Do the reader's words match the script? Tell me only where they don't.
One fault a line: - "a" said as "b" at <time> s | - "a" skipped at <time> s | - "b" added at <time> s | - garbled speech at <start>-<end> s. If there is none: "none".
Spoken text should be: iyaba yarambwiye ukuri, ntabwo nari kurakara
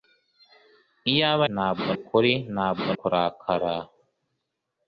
- "yarambwiye" said as "ntabwo" at 1.5 s
- "nari" skipped at 2.9 s